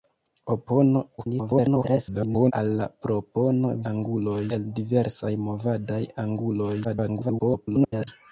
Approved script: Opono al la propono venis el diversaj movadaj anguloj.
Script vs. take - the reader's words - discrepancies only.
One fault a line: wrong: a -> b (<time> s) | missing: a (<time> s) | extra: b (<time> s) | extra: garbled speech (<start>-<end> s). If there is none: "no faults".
extra: garbled speech (1.2-2.5 s)
wrong: venis -> anguloj (3.9 s)
extra: garbled speech (6.8-8.1 s)